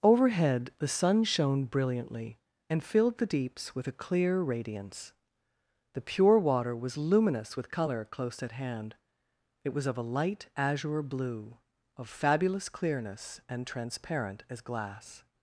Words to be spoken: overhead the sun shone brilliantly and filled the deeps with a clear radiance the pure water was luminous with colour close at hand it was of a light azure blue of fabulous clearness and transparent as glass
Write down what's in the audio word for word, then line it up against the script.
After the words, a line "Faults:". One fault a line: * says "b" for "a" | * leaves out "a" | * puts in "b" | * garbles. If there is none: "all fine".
overhead the sun shone brilliantly and filled the deeps with a clear radiance the pure water was luminous with colour close at hand it was of a light azure blue of fabulous clearness and transparent as glass
Faults:
all fine